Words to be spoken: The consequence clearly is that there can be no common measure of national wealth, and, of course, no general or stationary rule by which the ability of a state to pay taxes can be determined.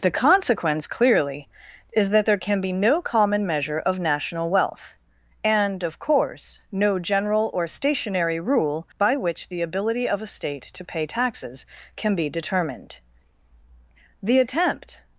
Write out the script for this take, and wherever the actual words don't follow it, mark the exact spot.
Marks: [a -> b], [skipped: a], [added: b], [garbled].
The consequence clearly is that there can be no common measure of national wealth, and, of course, no general or stationary rule by which the ability of a state to pay taxes can be determined. [added: The attempt]